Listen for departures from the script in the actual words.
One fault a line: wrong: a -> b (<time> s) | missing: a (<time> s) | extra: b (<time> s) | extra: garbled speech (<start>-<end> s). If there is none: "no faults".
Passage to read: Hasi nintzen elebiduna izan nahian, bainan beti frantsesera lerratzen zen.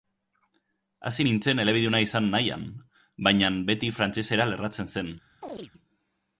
no faults